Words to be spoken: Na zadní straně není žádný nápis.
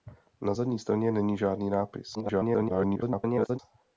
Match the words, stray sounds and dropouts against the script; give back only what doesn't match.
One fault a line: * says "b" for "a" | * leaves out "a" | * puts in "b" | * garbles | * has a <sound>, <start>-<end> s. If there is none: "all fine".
* garbles